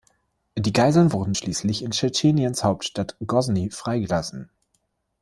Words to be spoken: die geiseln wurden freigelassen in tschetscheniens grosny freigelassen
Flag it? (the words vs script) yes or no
yes